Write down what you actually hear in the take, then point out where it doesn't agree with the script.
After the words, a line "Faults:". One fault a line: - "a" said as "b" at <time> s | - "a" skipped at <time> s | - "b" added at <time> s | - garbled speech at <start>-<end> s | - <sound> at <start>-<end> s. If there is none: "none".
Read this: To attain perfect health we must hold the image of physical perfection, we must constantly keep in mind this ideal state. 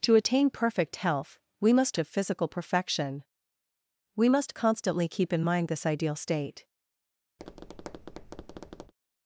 To attain perfect health we must of physical perfection, we must constantly keep in mind this ideal state.
Faults:
- "hold the image" skipped at 2.0 s
- tap at 7.4-8.9 s